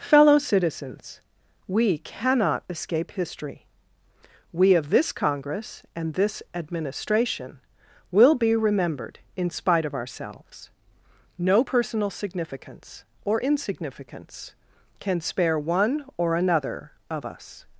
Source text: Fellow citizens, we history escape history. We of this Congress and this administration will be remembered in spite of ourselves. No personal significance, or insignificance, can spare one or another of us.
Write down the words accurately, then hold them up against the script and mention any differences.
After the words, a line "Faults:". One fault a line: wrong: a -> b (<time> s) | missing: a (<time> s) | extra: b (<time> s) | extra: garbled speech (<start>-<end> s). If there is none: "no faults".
Fellow citizens, we cannot escape history. We of this Congress and this administration will be remembered in spite of ourselves. No personal significance, or insignificance, can spare one or another of us.
Faults:
wrong: history -> cannot (2.0 s)